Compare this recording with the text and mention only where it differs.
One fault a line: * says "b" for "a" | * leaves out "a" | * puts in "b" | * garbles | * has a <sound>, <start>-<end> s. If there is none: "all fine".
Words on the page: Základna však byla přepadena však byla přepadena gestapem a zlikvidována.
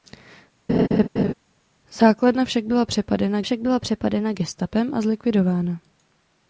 * has a laugh, 0.7-1.3 s